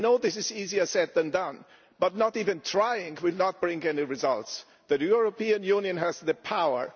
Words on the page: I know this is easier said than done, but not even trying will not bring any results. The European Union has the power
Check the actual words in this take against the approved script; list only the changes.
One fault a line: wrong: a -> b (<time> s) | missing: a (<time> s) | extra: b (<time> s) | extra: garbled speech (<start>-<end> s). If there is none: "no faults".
no faults